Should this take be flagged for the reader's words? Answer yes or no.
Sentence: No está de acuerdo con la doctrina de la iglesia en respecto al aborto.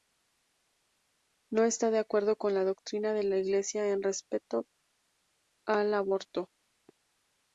no